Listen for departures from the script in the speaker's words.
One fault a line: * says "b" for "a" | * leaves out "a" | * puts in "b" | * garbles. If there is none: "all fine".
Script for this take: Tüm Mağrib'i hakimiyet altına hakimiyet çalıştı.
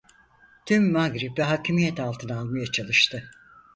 * says "almaya" for "hakimiyet"